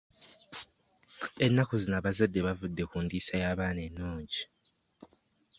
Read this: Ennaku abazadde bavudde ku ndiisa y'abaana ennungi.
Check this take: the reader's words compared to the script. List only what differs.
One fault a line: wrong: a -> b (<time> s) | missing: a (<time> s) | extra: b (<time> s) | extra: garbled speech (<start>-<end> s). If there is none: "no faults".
extra: zino (1.8 s)